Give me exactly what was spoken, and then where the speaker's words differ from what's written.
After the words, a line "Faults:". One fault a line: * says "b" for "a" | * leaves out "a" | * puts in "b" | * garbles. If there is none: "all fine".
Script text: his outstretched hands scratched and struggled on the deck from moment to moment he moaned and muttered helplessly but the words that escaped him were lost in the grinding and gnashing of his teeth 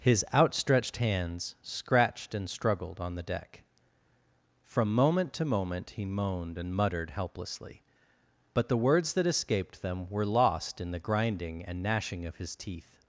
his outstretched hands scratched and struggled on the deck from moment to moment he moaned and muttered helplessly but the words that escaped them were lost in the grinding and gnashing of his teeth
Faults:
* says "them" for "him"